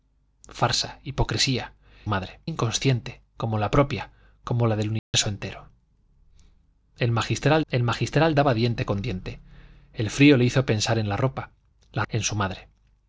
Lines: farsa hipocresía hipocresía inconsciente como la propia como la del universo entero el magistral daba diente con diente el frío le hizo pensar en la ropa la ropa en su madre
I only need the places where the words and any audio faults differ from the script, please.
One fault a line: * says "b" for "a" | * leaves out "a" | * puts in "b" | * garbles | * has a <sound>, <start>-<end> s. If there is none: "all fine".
* says "madre" for "hipocresía"
* has a dropout, 5.0-5.1 s
* puts in "el magistral"
* leaves out "ropa"